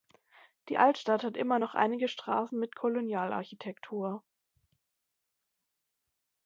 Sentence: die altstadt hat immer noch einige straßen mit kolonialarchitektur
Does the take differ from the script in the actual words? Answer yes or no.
no